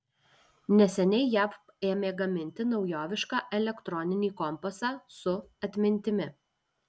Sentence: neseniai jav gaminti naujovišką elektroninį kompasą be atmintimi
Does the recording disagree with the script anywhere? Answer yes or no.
yes